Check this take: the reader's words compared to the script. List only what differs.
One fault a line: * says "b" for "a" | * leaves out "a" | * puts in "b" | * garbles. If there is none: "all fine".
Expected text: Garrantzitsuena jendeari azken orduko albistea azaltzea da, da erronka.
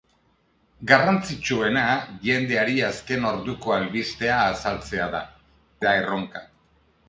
all fine